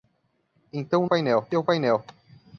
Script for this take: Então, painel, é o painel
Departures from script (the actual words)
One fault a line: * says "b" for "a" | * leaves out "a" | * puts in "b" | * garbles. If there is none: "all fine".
all fine